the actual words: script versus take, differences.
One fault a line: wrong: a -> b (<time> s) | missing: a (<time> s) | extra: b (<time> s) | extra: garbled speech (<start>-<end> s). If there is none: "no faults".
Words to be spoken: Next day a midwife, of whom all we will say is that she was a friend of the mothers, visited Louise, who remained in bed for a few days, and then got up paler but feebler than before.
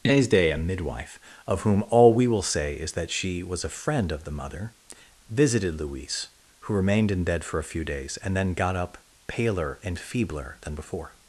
wrong: mothers -> mother (4.3 s)
wrong: but -> and (9.8 s)